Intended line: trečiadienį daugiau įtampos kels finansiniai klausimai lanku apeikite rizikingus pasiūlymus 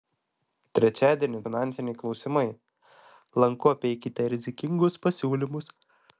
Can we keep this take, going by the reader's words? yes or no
no